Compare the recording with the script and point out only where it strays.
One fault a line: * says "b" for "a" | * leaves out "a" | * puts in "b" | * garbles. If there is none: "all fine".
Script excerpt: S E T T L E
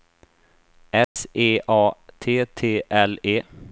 * puts in "A"